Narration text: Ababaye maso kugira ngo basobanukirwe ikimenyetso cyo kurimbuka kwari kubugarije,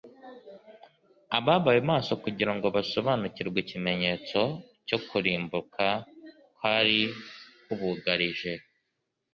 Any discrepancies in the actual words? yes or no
no